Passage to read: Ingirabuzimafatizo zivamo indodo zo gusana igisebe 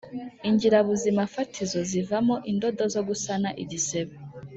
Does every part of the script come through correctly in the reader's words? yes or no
yes